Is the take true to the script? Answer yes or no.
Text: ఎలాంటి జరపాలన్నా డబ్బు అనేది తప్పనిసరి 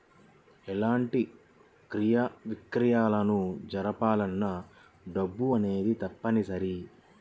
no